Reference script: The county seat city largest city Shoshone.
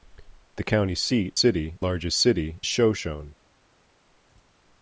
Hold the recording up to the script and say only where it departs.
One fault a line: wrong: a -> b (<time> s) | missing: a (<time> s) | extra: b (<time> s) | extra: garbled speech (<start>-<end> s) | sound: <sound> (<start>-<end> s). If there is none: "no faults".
no faults